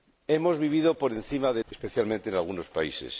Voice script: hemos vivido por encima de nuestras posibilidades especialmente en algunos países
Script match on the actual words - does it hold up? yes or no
no